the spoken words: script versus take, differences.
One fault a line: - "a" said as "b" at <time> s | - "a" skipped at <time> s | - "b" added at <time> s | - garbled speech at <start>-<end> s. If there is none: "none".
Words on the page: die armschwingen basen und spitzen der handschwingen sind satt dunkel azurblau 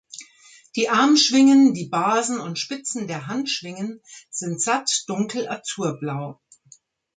- "die" added at 1.8 s